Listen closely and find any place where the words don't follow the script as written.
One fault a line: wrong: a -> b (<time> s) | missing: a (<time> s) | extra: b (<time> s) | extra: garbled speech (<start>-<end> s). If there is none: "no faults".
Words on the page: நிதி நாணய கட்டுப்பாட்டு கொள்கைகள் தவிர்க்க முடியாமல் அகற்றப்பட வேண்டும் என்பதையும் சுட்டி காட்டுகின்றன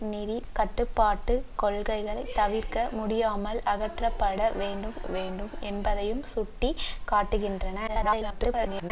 missing: நாணய (0.4 s)
extra: வேண்டும் (5.1 s)
extra: garbled speech (7.9-8.9 s)